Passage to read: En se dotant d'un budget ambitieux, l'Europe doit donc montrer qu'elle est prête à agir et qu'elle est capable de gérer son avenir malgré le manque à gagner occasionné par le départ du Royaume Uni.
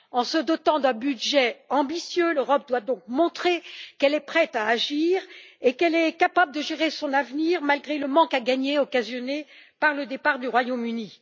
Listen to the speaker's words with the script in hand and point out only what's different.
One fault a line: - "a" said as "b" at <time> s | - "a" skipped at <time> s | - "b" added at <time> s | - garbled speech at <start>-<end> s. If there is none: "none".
none